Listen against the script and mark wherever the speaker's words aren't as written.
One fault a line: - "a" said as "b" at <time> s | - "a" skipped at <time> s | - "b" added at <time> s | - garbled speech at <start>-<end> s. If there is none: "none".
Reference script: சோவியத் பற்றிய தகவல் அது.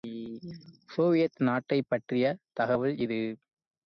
- "நாட்டைப்" added at 1.4 s
- "அது" said as "இது" at 3.0 s